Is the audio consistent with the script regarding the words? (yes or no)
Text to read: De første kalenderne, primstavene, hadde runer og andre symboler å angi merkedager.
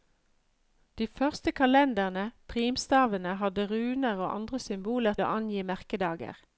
yes